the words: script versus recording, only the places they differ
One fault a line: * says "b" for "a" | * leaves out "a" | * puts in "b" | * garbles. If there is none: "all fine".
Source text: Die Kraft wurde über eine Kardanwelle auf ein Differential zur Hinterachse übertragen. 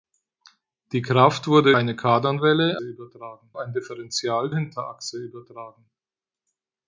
* leaves out "über"
* says "übertragen" for "auf"
* leaves out "zur"